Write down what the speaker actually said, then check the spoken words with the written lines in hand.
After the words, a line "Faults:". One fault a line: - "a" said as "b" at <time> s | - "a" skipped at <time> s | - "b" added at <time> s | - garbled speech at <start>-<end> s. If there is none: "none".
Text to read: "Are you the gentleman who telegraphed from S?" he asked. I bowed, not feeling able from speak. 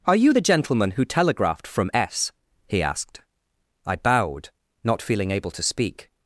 "Are you the gentleman who telegraphed from S?" he asked. I bowed, not feeling able to speak.
Faults:
- "from" said as "to" at 5.5 s